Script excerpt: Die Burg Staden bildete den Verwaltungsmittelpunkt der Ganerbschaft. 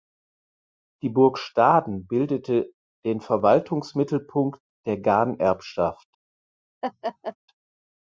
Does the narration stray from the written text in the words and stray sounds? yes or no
yes